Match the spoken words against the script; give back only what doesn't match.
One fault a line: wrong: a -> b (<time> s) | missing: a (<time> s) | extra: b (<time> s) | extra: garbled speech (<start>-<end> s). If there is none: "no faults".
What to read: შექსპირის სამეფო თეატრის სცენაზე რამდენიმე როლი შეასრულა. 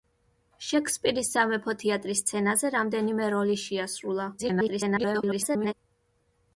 extra: garbled speech (4.4-5.7 s)